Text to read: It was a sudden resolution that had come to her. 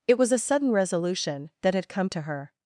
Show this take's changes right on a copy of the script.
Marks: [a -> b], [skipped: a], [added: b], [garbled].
It was a sudden resolution that had come to her.